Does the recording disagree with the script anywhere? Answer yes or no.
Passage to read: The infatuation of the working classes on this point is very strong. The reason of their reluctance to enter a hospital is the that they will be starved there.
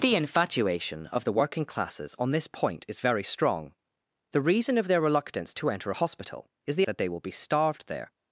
no